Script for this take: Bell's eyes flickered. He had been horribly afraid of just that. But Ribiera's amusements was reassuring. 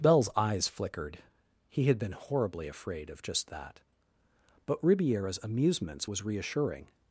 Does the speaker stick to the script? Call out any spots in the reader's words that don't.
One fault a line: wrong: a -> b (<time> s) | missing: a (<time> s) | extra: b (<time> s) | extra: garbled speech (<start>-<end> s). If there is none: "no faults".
no faults